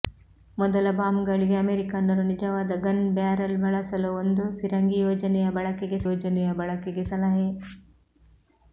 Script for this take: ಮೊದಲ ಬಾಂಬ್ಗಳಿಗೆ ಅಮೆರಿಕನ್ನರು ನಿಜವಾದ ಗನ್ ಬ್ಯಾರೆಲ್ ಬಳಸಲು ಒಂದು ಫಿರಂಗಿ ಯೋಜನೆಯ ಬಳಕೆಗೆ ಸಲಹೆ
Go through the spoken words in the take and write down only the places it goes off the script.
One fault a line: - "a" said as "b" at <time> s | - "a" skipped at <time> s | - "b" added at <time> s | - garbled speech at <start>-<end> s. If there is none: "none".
- "ಯೋಜನೆಯ ಬಳಕೆಗೆ" added at 6.1 s